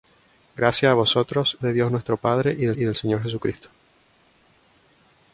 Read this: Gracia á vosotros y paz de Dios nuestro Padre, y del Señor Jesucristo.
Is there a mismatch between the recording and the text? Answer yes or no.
yes